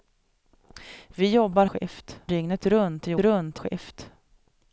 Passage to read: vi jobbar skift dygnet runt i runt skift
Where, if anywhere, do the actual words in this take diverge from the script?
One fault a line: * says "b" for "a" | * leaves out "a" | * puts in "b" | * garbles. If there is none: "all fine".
all fine